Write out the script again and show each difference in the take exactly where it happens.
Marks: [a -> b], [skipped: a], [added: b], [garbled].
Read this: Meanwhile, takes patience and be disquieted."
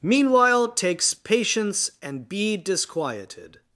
Meanwhile, takes patience and be disquieted."